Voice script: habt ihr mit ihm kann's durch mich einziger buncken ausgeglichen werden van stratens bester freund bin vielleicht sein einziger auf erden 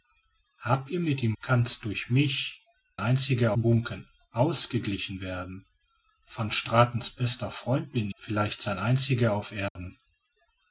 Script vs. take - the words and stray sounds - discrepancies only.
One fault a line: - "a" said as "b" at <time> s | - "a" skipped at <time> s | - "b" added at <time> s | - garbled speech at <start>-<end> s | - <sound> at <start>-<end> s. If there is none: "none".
- dropout at 9.7-9.8 s